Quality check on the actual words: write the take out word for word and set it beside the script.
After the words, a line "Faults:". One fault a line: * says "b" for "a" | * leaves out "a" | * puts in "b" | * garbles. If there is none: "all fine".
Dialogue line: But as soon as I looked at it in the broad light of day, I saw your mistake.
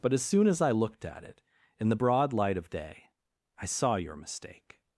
But as soon as I looked at it in the broad light of day, I saw your mistake.
Faults:
all fine